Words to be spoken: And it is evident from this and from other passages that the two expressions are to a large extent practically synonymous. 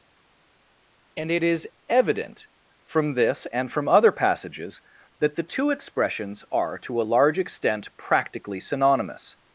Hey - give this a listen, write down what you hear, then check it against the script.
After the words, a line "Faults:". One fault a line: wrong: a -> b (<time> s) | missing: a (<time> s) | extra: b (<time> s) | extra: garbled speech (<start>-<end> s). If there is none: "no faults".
And it is evident from this and from other passages that the two expressions are to a large extent practically synonymous.
Faults:
no faults